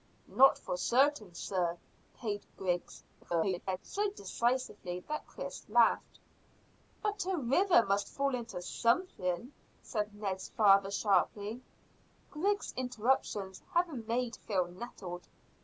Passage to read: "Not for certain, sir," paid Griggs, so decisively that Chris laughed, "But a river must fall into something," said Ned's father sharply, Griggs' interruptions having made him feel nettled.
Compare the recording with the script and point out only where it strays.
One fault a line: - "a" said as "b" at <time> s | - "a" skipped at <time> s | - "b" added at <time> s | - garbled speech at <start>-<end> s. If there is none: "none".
- garbled speech at 3.2-3.8 s
- "him" skipped at 14.4 s